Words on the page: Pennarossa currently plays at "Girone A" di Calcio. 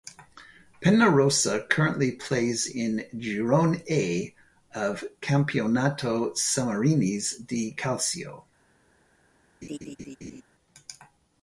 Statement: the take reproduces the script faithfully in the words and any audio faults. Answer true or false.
false